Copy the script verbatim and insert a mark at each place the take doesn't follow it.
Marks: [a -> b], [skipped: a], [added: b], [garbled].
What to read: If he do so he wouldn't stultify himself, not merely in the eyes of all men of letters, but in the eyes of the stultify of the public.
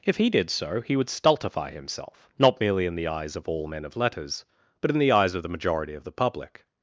If he [do -> did] so he [wouldn't -> would] stultify himself, not merely in the eyes of all men of letters, but in the eyes of the [stultify -> majority] of the public.